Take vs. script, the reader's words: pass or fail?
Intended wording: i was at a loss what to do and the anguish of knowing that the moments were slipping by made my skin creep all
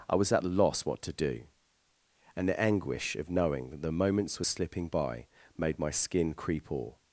pass